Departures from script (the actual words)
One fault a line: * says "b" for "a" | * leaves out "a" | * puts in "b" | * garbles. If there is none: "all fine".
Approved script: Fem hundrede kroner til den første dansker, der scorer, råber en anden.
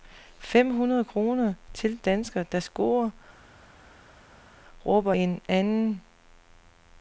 * leaves out "den første"